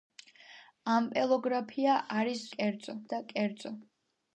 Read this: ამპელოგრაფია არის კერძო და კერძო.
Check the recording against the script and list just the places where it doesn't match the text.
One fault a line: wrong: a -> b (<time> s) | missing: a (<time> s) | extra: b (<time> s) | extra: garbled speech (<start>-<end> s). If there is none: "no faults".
no faults